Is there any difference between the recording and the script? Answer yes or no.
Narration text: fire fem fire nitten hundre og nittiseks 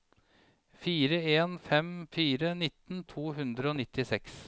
yes